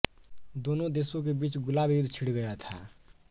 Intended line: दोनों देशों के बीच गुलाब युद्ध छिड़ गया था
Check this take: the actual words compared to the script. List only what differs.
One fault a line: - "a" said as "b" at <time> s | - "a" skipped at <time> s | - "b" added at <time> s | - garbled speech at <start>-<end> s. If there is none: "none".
none